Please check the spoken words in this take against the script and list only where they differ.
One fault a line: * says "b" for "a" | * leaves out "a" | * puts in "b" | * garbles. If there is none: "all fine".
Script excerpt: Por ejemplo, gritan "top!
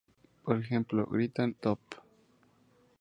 all fine